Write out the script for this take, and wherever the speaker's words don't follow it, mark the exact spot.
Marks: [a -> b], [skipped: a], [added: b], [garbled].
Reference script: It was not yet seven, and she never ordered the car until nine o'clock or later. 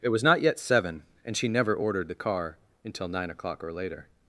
It was not yet seven, and she never ordered the car until nine o'clock or later.